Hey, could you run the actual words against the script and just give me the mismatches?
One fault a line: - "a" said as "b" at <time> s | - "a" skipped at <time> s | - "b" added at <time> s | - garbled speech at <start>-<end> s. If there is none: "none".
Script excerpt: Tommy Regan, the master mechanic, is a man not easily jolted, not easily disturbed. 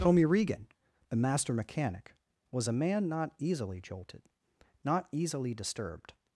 - "is" said as "was" at 2.5 s